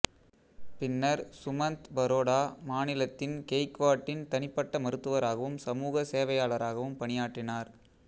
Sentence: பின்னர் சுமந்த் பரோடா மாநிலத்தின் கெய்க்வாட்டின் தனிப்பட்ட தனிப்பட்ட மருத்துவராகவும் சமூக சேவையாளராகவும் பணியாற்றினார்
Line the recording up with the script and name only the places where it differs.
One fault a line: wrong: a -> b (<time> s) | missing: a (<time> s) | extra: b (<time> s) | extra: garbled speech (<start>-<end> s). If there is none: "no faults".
missing: தனிப்பட்ட (4.8 s)